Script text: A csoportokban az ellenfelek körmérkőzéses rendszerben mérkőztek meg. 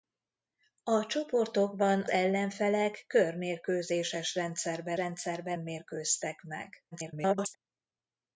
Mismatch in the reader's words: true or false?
true